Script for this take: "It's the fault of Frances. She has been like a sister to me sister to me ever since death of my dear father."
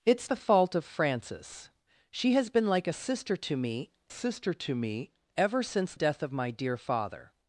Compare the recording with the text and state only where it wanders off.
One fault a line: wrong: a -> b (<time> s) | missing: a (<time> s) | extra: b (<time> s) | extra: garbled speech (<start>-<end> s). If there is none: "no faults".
no faults